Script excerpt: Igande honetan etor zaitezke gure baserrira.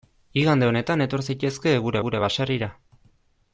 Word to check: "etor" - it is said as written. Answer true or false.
true